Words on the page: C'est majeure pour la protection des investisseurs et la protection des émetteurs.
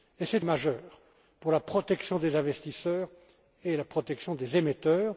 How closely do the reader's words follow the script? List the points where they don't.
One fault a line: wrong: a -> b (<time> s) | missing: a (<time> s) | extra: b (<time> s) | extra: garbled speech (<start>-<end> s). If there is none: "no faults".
no faults